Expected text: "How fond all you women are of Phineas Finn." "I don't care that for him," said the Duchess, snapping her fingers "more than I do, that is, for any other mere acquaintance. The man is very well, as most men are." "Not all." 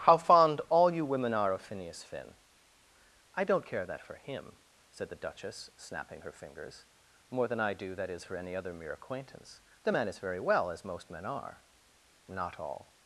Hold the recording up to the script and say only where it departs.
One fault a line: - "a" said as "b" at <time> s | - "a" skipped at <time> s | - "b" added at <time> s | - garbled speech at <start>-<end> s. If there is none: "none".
none